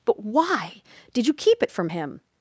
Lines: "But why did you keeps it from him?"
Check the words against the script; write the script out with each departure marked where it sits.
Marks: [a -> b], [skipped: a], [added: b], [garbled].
"But why did you [keeps -> keep] it from him?"